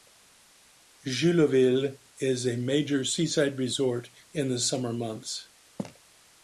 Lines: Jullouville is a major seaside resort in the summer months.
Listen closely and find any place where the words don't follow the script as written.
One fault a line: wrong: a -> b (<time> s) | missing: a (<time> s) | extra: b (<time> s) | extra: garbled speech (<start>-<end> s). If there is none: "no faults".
no faults